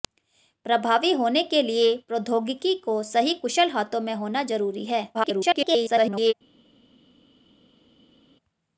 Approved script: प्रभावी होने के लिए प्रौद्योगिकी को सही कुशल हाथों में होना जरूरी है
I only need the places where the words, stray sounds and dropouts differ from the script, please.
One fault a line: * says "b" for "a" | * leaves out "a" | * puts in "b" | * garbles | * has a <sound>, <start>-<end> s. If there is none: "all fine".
* garbles